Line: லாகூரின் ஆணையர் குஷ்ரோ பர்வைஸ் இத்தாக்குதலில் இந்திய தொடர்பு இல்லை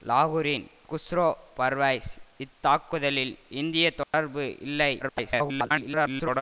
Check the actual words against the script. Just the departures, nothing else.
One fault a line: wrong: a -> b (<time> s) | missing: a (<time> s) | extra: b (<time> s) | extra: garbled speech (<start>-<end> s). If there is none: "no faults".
missing: ஆணையர் (0.7 s)
extra: garbled speech (5.0-6.4 s)